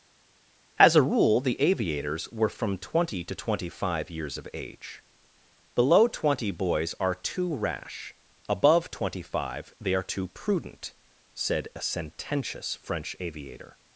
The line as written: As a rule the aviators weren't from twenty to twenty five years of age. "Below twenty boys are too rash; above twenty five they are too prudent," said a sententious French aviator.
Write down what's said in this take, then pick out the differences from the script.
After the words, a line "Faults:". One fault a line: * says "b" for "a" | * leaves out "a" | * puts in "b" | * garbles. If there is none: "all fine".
As a rule the aviators were from twenty to twenty five years of age. "Below twenty boys are too rash; above twenty five they are too prudent," said a sententious French aviator.
Faults:
* says "were" for "weren't"